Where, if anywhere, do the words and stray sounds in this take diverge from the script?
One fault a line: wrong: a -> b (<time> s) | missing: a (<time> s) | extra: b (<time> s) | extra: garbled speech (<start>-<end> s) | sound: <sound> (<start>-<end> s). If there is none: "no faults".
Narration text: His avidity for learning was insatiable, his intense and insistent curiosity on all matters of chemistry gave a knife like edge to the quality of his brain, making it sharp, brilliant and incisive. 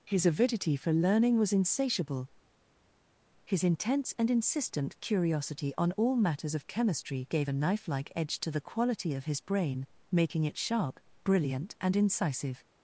no faults